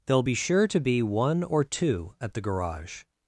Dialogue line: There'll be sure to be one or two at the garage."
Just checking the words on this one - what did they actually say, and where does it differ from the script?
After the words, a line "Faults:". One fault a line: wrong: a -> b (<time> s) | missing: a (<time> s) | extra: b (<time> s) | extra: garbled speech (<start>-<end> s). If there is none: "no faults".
There'll be sure to be one or two at the garage."
Faults:
no faults